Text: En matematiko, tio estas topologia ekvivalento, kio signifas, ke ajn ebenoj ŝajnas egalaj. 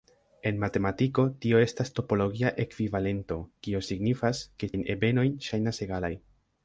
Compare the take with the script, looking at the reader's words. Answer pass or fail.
pass